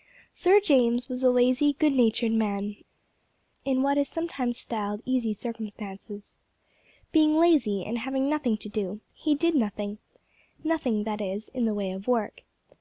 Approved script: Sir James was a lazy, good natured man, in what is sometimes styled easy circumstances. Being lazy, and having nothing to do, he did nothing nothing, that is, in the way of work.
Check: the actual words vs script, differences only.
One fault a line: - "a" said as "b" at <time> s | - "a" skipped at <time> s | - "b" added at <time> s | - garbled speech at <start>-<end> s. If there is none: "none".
none